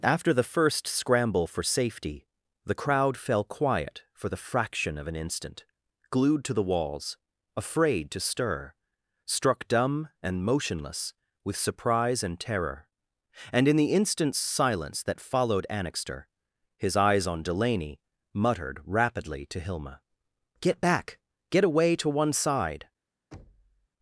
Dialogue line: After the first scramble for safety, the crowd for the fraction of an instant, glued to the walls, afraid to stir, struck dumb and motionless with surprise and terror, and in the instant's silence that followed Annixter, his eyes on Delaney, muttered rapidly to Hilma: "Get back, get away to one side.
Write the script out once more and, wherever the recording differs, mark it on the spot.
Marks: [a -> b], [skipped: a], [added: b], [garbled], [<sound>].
After the first scramble for safety, the crowd [added: fell quiet] for the fraction of an instant, glued to the walls, afraid to stir, struck dumb and motionless with surprise and terror, and in the instant's silence that followed Annixter, his eyes on Delaney, muttered rapidly to Hilma: "Get back, get away to one side. [thud]